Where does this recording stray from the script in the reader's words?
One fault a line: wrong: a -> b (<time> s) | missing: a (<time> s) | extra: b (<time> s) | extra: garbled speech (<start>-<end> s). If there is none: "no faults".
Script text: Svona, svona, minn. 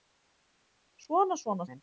no faults